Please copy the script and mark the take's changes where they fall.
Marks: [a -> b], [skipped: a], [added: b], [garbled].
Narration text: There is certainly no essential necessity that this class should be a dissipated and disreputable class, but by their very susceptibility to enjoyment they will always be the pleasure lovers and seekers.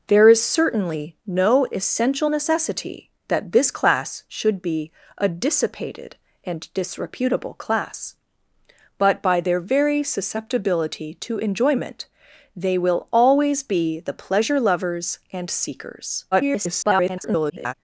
There is certainly no essential necessity that this class should be a dissipated and disreputable class, but by their very susceptibility to enjoyment they will always be the pleasure lovers and seekers. [garbled]